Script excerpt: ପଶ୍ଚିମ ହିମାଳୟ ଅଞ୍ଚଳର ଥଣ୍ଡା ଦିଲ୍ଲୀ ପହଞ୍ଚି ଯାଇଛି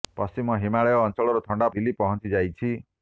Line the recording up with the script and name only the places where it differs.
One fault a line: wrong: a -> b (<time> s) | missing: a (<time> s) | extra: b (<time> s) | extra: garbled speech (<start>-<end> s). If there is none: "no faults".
no faults